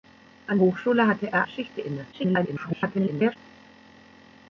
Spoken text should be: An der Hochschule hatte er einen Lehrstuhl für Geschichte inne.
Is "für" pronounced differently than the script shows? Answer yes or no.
yes